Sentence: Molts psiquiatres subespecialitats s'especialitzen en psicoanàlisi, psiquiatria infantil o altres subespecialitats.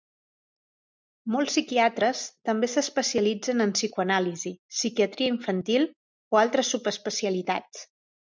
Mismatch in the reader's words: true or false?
true